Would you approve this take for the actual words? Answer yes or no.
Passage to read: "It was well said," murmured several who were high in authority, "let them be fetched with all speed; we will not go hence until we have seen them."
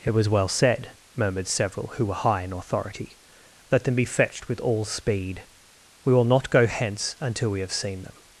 yes